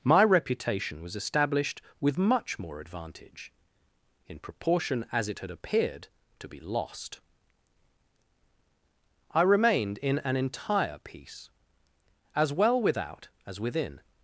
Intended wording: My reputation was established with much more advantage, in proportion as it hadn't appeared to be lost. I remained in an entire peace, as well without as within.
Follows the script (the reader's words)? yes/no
no